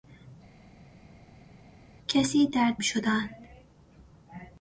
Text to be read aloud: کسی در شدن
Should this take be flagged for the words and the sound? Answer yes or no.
no